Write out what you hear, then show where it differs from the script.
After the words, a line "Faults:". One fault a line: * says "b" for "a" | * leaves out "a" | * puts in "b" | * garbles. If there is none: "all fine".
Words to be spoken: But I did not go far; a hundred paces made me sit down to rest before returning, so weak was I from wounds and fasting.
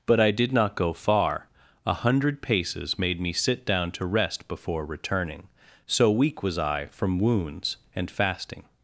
But I did not go far; a hundred paces made me sit down to rest before returning, so weak was I from wounds and fasting.
Faults:
all fine